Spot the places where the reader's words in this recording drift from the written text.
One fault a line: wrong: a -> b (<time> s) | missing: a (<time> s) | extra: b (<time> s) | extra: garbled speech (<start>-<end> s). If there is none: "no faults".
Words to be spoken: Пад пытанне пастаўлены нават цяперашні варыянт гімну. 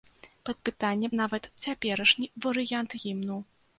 missing: пастаўлены (1.1 s)